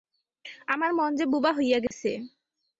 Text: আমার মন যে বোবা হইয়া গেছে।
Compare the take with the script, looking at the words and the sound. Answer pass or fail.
fail